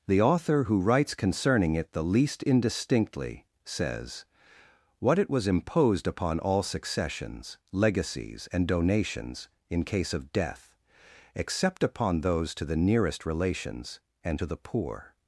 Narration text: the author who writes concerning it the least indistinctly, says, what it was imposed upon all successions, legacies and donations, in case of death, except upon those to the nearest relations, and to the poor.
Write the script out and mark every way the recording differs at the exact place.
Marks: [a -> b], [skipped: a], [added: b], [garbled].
the author who writes concerning it the least indistinctly, says, what it was imposed upon all successions, legacies and donations, in case of death, except upon those to the nearest relations, and to the poor.